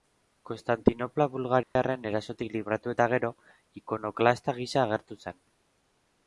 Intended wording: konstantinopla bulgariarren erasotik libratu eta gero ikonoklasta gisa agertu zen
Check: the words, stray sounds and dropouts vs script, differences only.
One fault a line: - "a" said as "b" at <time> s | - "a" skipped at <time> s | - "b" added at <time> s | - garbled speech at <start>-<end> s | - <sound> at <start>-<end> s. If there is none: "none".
- dropout at 1.6-1.8 s